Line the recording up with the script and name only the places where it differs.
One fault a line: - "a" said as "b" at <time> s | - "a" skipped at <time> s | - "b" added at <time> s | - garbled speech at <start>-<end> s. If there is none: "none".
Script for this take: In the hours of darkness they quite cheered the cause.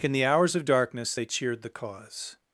- "quite" skipped at 1.2 s